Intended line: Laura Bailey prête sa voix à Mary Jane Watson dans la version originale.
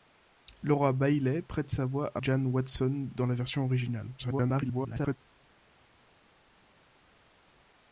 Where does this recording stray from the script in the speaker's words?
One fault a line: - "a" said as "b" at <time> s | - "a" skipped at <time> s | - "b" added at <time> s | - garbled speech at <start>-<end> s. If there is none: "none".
- "Mary" skipped at 2.2 s
- garbled speech at 4.2-5.2 s